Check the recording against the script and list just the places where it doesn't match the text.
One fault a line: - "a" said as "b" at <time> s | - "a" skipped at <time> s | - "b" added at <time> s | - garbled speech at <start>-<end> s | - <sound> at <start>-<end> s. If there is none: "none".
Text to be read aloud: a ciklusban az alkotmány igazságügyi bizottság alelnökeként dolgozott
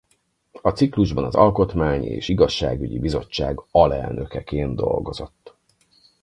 - "és" added at 2.0 s